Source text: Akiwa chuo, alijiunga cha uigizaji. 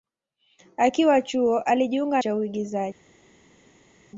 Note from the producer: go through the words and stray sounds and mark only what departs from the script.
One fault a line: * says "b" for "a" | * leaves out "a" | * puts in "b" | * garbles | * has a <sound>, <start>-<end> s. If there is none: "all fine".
all fine